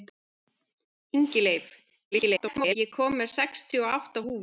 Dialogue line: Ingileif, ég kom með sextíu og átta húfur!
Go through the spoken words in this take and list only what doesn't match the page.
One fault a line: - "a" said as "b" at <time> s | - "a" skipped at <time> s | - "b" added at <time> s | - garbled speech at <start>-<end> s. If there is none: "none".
- garbled speech at 2.1-2.8 s